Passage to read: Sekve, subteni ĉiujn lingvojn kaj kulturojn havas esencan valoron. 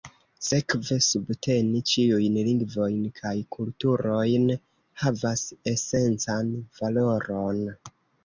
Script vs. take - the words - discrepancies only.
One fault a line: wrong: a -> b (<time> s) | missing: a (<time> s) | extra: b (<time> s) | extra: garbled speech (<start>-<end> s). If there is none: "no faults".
no faults